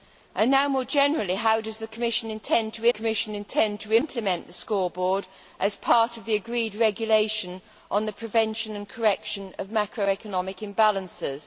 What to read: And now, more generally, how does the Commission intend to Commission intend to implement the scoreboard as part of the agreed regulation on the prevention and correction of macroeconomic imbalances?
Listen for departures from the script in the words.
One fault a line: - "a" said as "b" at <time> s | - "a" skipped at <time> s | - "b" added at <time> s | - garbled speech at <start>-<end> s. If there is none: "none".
none